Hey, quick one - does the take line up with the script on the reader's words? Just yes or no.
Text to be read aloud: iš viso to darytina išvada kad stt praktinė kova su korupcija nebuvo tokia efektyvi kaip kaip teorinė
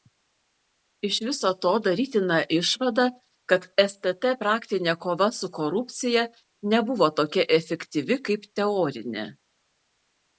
no